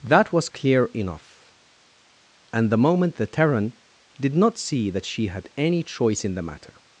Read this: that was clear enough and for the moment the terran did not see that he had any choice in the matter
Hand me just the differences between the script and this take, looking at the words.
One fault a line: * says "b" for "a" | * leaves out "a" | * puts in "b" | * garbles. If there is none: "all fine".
* leaves out "for"
* says "she" for "he"